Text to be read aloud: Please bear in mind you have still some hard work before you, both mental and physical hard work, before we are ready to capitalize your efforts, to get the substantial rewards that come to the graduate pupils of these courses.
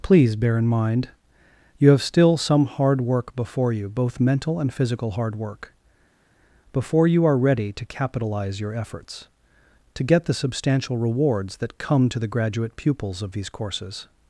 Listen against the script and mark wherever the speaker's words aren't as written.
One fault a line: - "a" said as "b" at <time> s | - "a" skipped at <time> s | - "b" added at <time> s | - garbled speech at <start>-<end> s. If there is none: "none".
- "we" said as "you" at 7.1 s